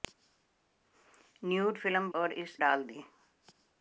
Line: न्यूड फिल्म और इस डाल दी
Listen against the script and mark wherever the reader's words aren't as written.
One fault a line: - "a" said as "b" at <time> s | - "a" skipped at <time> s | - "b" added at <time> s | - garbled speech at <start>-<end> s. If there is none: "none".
none